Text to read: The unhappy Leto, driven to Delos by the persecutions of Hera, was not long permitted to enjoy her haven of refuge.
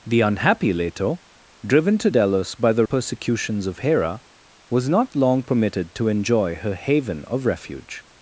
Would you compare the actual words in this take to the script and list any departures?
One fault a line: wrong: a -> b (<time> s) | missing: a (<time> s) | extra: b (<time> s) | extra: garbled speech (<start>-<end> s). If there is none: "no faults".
no faults